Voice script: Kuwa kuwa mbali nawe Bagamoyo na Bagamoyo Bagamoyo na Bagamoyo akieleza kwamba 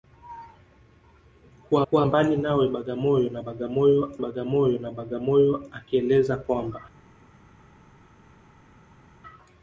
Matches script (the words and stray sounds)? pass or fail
pass